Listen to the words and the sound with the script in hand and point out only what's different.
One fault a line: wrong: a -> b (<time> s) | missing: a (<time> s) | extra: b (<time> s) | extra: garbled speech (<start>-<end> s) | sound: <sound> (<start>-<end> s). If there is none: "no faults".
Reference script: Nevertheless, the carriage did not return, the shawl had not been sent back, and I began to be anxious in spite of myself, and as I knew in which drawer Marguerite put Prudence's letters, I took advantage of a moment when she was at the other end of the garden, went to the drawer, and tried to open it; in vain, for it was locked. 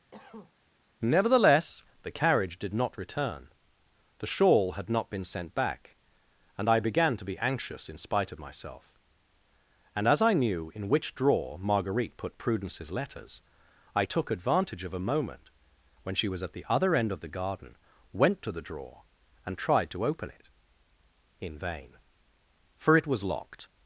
sound: cough (0.1-0.5 s)